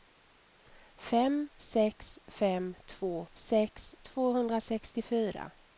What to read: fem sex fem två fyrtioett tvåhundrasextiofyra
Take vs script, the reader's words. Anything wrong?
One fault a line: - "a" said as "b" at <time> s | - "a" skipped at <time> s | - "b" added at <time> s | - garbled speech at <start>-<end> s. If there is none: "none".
- "fyrtioett" said as "sex" at 3.3 s